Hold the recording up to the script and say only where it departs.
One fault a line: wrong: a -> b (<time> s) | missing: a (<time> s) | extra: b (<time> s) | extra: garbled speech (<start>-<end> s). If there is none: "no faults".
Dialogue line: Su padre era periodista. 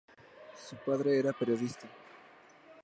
no faults